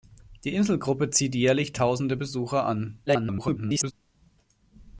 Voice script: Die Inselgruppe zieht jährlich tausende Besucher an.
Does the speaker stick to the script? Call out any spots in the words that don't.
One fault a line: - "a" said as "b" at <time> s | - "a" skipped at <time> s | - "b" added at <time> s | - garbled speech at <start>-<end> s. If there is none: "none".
- garbled speech at 3.1-3.9 s